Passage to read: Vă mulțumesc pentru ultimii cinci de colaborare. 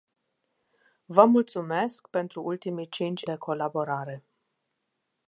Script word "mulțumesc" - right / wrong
right